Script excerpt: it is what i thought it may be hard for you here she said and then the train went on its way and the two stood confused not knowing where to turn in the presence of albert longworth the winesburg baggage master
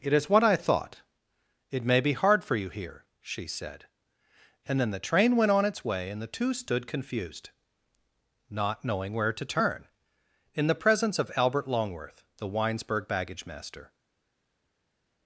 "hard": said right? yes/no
yes